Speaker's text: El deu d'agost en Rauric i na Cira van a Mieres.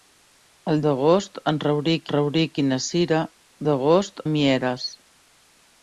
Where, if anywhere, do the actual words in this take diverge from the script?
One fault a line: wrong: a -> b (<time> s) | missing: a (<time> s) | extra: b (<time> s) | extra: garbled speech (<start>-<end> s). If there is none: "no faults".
missing: deu (0.8 s)
extra: Rauric (2.1 s)
wrong: van -> d'agost (3.7 s)